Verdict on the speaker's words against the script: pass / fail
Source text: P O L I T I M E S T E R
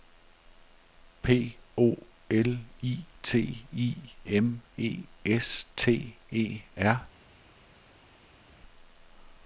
pass